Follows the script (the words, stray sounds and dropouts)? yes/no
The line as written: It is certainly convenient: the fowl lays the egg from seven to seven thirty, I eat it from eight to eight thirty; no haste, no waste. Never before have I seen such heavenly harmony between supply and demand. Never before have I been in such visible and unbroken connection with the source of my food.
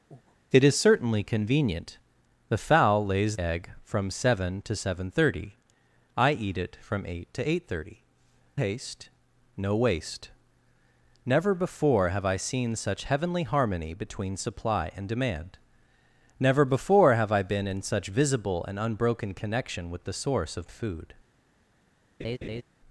no